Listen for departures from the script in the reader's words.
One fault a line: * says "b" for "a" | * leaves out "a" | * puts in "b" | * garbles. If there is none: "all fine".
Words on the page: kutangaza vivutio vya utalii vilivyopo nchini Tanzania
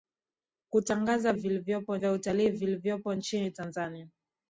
* says "vilivyopo" for "vivutio"